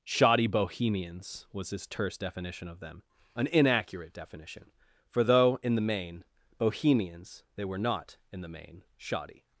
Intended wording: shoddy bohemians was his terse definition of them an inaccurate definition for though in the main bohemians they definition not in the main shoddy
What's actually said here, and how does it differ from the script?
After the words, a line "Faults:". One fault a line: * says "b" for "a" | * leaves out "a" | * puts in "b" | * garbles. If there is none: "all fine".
shoddy bohemians was his terse definition of them an inaccurate definition for though in the main bohemians they were not in the main shoddy
Faults:
* says "were" for "definition"